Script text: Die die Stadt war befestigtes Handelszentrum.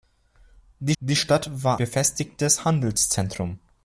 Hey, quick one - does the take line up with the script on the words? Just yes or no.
yes